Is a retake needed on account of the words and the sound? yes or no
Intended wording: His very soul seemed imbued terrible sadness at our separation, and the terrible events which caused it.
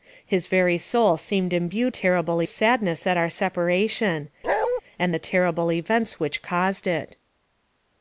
yes